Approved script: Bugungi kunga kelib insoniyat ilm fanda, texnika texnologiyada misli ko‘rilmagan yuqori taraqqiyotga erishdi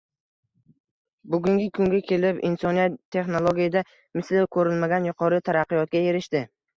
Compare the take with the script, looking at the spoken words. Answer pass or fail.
fail